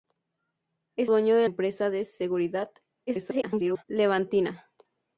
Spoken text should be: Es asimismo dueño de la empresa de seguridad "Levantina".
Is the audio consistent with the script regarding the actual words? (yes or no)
no